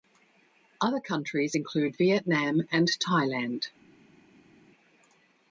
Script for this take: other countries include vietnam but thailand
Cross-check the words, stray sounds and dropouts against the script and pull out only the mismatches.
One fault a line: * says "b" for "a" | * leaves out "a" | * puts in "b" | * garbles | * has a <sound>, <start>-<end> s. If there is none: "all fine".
* says "and" for "but"